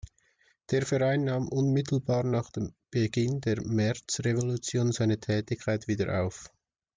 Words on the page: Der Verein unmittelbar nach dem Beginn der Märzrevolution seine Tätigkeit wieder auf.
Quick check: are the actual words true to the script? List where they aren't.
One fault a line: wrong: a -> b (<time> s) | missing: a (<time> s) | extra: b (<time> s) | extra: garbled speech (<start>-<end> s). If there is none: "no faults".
extra: nahm (1.2 s)